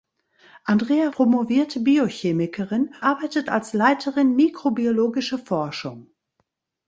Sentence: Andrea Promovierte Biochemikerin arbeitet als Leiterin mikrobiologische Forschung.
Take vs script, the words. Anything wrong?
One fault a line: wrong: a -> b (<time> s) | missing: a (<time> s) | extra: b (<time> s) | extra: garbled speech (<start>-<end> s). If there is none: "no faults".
no faults